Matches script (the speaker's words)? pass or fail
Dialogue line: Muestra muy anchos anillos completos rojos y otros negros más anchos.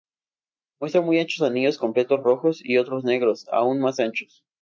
fail